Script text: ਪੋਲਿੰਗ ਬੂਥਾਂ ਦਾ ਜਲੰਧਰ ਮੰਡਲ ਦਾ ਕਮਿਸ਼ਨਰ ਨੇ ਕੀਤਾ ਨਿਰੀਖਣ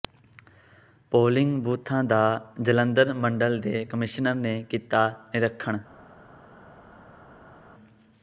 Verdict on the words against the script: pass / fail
fail